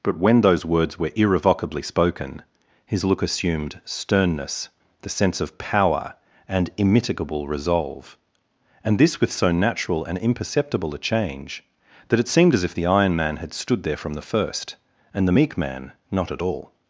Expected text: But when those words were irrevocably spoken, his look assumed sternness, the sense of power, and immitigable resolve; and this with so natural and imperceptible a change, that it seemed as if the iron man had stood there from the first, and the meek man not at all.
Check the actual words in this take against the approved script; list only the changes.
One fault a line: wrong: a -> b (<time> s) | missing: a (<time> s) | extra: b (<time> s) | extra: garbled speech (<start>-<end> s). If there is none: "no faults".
no faults